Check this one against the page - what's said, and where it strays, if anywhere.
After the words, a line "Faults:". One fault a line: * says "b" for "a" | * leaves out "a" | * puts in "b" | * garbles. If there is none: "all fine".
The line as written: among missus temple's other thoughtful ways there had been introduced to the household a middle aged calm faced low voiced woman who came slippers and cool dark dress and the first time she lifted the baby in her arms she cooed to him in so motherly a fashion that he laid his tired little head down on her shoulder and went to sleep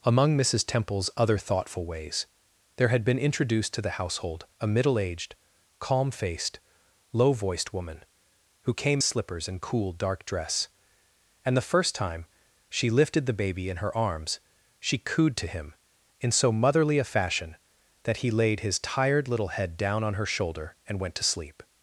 among missus temple's other thoughtful ways there had been introduced to the household a middle aged calm faced low voiced woman who came slippers and cool dark dress and the first time she lifted the baby in her arms she cooed to him in so motherly a fashion that he laid his tired little head down on her shoulder and went to sleep
Faults:
all fine